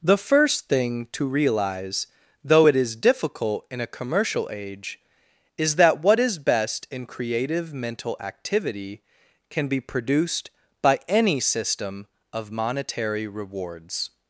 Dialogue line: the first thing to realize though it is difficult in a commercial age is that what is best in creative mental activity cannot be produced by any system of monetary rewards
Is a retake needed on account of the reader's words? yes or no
yes